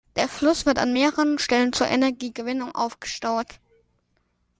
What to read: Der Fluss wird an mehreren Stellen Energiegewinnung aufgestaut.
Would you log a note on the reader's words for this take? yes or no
yes